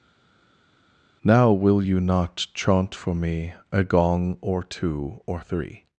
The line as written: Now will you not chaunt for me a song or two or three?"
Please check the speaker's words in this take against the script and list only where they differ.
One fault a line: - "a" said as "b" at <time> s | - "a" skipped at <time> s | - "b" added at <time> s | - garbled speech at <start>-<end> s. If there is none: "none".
- "song" said as "gong" at 3.8 s